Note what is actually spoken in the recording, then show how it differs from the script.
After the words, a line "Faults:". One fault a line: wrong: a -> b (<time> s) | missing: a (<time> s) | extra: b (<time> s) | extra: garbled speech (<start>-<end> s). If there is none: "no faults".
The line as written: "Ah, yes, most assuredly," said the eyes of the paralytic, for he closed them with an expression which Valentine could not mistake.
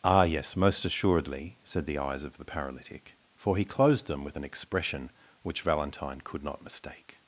"Ah, yes, most assuredly," said the eyes of the paralytic, for he closed them with an expression which Valentine could not mistake.
Faults:
no faults